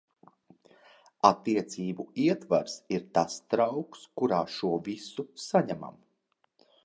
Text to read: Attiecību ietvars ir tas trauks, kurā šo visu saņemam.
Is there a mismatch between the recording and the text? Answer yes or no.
no